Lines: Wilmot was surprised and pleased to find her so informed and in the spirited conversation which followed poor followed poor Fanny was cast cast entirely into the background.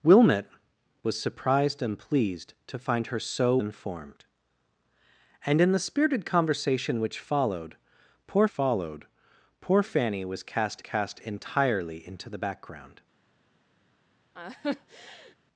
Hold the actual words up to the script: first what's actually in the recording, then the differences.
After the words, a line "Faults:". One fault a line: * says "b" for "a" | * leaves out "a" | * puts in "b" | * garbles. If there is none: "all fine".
Wilmot was surprised and pleased to find her so informed and in the spirited conversation which followed poor followed poor Fanny was cast cast entirely into the background.
Faults:
all fine